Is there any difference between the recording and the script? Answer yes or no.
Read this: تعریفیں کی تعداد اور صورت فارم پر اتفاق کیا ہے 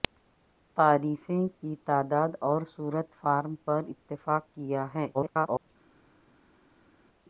yes